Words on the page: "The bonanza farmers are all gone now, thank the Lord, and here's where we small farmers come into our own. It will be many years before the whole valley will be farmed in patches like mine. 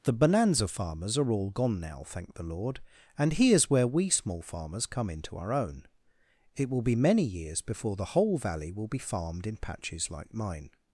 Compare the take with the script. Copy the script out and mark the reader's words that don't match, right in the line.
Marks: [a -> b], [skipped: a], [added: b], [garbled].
"The bonanza farmers are all gone now, thank the Lord, and here's where we small farmers come into our own. It will be many years before the whole valley will be farmed in patches like mine.